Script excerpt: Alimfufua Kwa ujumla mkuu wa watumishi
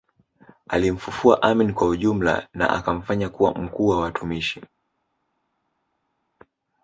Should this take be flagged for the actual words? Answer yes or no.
yes